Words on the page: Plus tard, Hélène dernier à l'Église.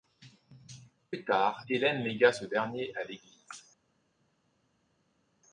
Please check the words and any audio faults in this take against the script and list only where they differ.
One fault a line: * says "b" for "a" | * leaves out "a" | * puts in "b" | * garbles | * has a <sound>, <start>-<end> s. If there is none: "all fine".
* puts in "légua ce"